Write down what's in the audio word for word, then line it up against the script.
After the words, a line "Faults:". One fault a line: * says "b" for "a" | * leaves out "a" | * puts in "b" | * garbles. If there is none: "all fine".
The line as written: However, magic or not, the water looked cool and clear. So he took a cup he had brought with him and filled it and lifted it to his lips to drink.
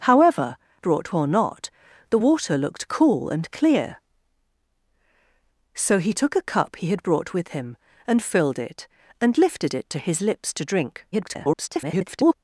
However, brought or not, the water looked cool and clear. So he took a cup he had brought with him and filled it and lifted it to his lips to drink. [garbled]
Faults:
* says "brought" for "magic"
* garbles